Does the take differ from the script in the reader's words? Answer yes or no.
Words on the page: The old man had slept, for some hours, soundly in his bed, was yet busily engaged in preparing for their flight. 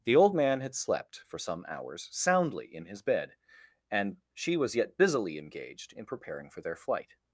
yes